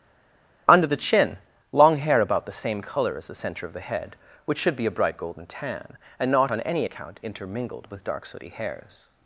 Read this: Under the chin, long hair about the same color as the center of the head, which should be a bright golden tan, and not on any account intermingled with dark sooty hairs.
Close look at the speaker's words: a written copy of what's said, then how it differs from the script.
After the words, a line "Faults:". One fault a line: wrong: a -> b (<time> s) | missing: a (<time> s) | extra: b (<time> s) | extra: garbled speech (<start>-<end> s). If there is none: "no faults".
Under the chin, long hair about the same color as the center of the head, which should be a bright golden tan, and not on any account intermingled with dark sooty hairs.
Faults:
no faults